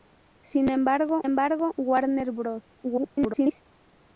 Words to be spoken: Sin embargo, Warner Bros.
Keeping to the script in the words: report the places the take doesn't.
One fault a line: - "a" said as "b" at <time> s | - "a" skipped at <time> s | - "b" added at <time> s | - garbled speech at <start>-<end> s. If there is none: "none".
- "embargo" added at 1.2 s
- garbled speech at 2.8-3.6 s